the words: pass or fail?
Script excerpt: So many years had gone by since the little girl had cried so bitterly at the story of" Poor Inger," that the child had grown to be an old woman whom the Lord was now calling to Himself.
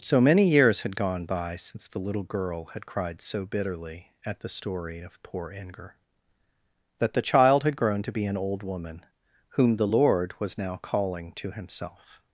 pass